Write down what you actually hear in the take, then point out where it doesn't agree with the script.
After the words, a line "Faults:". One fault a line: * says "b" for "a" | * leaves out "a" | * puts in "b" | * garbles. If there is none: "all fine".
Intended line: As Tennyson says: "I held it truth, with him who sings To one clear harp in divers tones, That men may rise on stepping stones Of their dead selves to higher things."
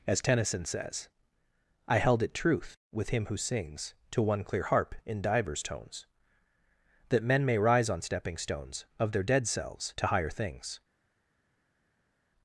As Tennyson says: "I held it truth, with him who sings To one clear harp in divers tones, That men may rise on stepping stones Of their dead selves to higher things."
Faults:
all fine